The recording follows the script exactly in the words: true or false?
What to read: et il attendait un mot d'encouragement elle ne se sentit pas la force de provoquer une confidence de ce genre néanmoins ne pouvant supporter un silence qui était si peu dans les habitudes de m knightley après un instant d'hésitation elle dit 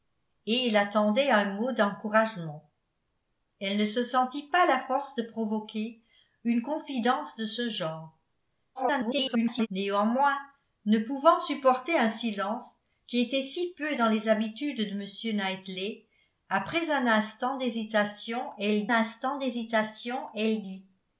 false